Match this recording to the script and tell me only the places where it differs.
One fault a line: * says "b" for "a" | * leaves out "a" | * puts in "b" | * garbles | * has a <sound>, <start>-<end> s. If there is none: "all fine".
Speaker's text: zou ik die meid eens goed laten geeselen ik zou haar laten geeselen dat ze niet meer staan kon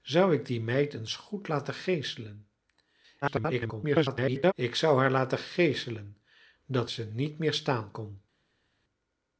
* garbles